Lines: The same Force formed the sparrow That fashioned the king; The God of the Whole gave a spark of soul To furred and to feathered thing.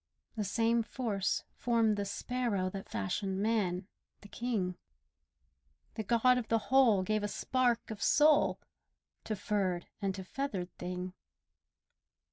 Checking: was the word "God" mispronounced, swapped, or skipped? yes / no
no